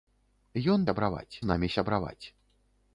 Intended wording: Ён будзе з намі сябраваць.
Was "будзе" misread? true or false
true